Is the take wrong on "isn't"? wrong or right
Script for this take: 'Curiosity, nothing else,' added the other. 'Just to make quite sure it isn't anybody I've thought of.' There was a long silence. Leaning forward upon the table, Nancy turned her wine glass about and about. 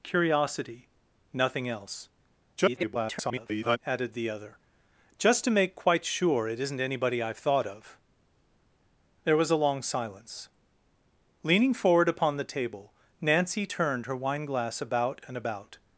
right